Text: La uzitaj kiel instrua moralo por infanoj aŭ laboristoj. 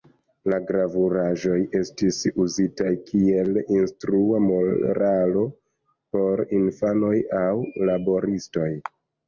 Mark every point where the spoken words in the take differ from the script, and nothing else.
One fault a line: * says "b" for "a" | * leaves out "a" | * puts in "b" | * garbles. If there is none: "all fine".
* puts in "gravuraĵoj estis"